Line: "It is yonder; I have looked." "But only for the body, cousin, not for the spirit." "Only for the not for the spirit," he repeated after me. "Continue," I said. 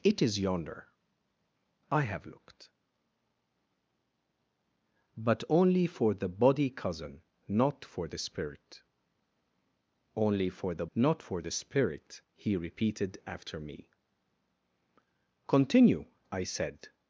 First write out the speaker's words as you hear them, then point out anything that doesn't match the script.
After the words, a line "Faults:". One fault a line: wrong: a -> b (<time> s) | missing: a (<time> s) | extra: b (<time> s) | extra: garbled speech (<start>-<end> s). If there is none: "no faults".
"It is yonder; I have looked." "But only for the body, cousin, not for the spirit." "Only for the not for the spirit," he repeated after me. "Continue," I said.
Faults:
no faults